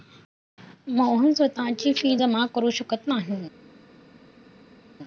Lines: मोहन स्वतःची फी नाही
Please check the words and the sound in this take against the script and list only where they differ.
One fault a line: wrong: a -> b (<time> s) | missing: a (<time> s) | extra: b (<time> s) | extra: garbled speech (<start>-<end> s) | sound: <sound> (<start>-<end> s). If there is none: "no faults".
extra: जमा करु शकत (2.1 s)